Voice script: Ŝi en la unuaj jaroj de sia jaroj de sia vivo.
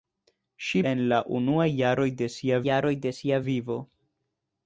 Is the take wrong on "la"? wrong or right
right